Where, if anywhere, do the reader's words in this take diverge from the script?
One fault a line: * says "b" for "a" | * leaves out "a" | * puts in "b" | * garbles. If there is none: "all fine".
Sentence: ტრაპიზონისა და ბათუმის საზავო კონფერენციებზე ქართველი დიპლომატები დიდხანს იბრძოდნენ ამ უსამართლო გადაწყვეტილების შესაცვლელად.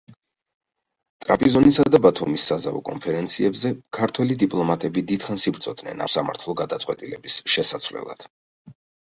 * leaves out "ამ"